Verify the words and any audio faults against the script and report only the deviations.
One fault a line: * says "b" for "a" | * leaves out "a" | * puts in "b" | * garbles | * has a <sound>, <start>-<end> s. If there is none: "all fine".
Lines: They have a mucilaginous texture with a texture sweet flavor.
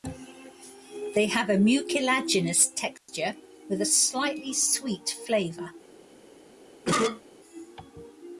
* has a dropout, 3.0-3.1 s
* says "slightly" for "texture"
* has a cough, 6.9-7.2 s